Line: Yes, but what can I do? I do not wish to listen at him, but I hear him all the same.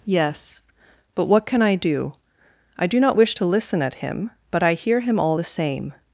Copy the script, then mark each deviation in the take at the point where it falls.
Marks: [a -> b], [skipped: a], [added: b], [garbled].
Yes, but what can I do? I do not wish to listen at him, but I hear him all the same.